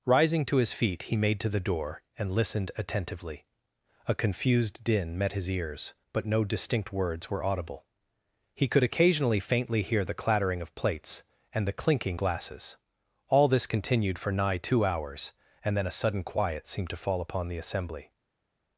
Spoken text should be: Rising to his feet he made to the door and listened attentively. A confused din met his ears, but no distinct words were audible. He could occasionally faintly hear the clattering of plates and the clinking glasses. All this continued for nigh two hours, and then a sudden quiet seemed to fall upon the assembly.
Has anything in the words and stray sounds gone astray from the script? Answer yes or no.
no